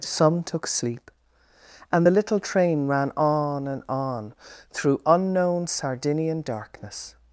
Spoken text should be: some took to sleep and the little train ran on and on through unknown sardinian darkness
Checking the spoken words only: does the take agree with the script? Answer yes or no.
no